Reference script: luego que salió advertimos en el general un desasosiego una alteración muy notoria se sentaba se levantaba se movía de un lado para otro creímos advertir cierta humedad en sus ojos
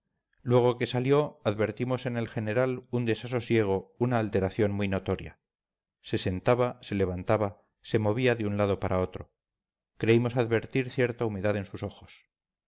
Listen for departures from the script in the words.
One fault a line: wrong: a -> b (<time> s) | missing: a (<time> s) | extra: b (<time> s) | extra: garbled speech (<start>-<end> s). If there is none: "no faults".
no faults